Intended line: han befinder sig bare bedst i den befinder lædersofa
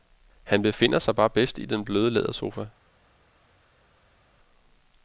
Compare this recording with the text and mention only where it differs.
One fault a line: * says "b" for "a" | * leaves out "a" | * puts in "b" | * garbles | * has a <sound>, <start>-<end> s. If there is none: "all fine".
* says "bløde" for "befinder"